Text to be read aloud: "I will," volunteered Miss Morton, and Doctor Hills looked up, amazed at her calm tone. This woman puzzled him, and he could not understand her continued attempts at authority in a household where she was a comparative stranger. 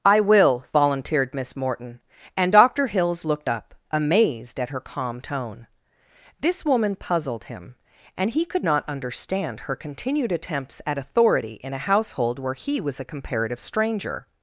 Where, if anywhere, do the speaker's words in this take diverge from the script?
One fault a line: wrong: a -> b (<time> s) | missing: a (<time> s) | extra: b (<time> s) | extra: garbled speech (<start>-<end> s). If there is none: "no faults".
wrong: she -> he (12.5 s)